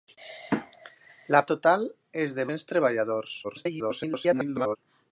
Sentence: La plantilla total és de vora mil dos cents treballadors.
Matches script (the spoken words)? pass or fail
fail